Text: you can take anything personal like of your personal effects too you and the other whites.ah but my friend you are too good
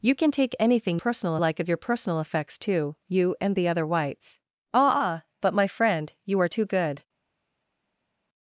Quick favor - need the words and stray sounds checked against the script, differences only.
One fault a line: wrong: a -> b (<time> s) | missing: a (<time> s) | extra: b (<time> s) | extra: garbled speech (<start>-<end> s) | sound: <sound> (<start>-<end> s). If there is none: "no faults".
no faults